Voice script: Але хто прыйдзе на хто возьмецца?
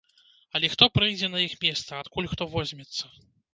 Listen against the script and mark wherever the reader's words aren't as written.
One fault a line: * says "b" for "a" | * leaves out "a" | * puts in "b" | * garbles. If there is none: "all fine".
* puts in "іх месца адкуль"